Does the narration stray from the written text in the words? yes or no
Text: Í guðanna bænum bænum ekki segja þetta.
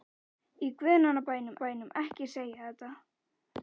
no